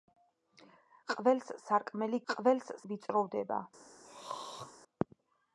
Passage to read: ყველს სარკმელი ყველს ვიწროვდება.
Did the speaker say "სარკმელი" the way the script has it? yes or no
yes